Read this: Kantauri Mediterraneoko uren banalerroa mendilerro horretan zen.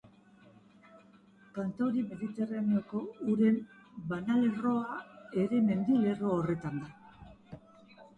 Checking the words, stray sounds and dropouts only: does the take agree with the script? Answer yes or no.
no